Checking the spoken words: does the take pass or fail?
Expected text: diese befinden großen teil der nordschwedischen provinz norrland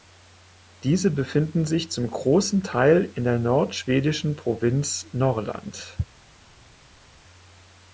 fail